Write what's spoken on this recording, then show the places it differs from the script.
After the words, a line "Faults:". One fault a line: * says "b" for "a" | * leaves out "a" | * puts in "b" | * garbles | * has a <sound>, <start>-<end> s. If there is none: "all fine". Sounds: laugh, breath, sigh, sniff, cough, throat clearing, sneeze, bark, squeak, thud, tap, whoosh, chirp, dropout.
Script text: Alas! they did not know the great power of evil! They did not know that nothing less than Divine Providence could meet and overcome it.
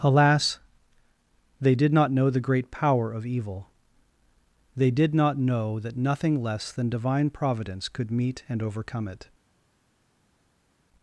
Alas! they did not know the great power of evil! They did not know that nothing less than Divine Providence could meet and overcome it.
Faults:
all fine